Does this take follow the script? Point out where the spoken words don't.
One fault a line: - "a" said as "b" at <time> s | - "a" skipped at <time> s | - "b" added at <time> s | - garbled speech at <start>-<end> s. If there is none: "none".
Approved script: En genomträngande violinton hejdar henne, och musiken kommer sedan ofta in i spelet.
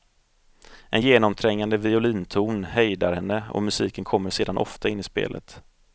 none